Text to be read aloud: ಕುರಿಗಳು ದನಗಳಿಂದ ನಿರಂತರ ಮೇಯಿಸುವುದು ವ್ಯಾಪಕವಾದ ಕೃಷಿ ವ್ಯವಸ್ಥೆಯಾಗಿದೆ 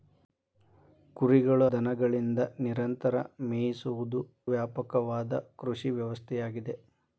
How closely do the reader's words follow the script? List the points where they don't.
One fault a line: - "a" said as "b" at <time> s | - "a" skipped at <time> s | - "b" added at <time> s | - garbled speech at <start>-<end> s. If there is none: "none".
none